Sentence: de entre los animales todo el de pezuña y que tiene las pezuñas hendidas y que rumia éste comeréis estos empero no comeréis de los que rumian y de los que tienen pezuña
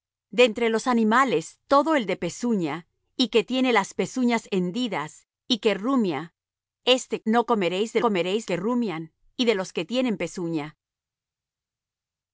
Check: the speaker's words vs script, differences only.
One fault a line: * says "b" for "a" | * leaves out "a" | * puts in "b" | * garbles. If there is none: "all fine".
* leaves out "comeréis estos empero"
* says "comeréis" for "los"